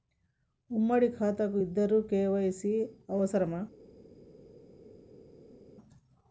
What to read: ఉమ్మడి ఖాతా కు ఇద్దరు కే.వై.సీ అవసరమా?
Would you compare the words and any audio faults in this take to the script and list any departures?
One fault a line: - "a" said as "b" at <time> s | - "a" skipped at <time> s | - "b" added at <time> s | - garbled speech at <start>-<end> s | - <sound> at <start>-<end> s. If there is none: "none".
none